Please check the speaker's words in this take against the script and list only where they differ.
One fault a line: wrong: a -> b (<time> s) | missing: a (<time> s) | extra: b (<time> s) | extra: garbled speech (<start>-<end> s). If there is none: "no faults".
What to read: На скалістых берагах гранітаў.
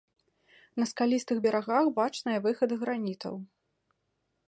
extra: бачныя выхады (2.0 s)